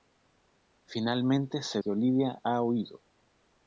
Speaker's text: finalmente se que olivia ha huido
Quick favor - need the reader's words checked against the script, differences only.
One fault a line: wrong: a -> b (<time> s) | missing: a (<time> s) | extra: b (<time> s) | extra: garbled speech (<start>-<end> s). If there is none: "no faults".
no faults